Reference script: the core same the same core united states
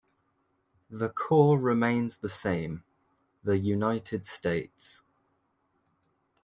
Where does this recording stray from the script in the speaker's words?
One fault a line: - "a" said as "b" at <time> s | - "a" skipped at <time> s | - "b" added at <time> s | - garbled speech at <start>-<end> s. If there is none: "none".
- "same" said as "remains" at 1.6 s
- "core" said as "the" at 3.4 s